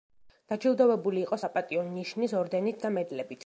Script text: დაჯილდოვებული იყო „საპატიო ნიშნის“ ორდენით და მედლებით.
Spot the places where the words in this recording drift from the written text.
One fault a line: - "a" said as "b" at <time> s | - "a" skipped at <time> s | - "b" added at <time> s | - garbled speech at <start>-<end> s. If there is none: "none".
none